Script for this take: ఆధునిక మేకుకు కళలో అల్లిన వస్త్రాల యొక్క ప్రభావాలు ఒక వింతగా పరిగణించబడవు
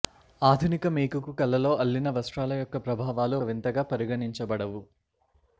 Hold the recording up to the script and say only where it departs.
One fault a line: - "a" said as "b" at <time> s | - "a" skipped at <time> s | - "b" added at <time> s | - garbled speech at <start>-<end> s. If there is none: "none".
- "ఒక" skipped at 3.4 s